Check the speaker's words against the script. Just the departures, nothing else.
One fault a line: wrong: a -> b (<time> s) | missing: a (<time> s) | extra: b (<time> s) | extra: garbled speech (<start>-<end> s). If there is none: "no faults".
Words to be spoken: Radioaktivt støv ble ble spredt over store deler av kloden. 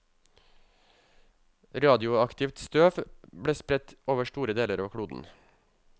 missing: ble (3.5 s)